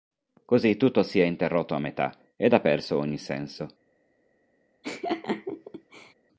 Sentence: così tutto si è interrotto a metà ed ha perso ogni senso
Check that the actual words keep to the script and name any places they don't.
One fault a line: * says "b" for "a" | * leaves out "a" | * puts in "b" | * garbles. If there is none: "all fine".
all fine